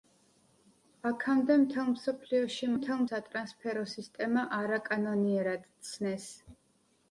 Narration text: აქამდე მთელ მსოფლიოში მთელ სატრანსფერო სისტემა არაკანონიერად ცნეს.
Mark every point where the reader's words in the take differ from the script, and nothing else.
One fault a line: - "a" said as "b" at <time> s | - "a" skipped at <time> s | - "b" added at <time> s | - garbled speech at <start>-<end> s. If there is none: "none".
none